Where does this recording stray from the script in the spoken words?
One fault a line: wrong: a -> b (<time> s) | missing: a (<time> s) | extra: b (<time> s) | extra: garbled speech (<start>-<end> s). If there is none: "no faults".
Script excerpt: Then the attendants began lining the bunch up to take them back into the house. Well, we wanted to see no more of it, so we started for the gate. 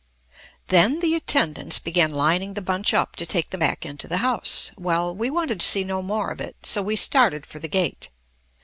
no faults